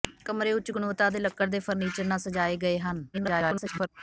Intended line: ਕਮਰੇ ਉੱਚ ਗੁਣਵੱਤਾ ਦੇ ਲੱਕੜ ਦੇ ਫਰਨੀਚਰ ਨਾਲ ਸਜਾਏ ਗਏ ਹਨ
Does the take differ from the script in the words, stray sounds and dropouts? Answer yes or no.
yes